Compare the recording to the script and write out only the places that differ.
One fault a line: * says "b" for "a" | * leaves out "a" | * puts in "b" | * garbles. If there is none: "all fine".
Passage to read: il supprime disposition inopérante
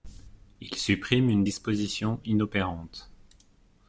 * puts in "une"